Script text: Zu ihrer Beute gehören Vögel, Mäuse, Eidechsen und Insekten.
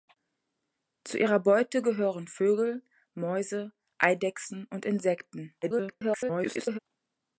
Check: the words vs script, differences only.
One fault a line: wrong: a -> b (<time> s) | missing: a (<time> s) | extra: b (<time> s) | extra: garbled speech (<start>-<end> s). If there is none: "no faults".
extra: garbled speech (5.6-6.8 s)